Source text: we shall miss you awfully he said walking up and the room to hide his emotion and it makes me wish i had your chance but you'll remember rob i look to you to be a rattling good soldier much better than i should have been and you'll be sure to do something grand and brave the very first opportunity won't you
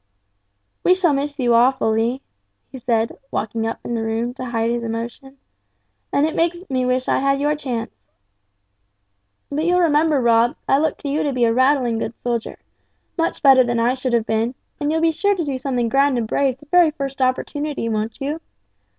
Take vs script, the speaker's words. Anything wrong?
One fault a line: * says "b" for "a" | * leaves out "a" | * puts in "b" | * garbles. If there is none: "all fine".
all fine